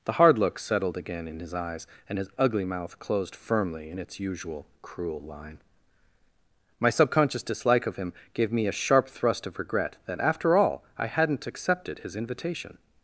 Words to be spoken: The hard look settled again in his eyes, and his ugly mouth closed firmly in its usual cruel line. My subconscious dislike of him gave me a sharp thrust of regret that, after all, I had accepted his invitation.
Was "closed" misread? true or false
false